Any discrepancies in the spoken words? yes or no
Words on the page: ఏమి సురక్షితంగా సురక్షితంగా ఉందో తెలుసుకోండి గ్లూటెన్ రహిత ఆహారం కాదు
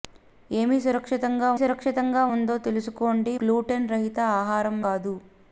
no